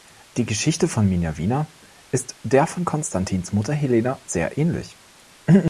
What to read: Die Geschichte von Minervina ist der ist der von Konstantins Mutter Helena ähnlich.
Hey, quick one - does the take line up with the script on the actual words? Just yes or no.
no